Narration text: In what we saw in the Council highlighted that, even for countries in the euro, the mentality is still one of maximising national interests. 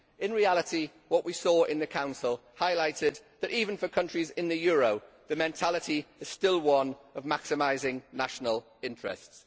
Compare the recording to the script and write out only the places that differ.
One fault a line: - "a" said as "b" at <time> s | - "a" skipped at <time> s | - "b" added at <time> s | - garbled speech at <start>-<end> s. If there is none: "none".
- "reality" added at 0.3 s